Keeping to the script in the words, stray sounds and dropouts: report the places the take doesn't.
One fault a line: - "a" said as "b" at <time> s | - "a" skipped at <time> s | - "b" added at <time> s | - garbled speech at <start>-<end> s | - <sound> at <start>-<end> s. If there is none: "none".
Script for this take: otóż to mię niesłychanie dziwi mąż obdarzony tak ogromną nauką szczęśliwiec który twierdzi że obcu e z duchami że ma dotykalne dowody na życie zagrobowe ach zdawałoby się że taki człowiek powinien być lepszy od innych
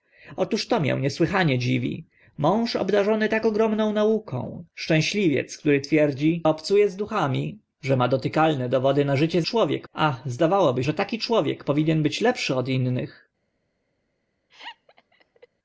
- "że" skipped at 6.4 s
- "zagrobowe" said as "człowiek" at 9.4 s
- "się" skipped at 10.8 s
- laugh at 14.5-15.5 s